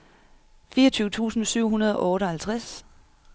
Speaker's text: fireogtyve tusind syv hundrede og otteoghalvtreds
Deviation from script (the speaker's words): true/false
false